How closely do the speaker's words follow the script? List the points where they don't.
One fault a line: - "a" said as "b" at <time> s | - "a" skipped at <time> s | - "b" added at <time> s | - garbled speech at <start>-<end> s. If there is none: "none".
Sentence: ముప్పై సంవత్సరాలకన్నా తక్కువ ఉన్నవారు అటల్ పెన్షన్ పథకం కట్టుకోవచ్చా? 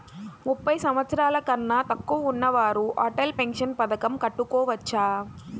none